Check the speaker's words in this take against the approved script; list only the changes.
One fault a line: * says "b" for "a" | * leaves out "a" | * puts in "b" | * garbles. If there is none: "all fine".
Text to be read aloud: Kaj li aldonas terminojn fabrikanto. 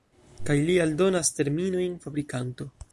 all fine